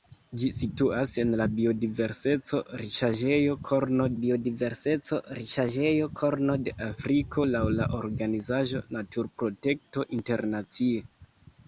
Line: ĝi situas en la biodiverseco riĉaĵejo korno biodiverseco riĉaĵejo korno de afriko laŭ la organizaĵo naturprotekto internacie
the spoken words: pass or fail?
pass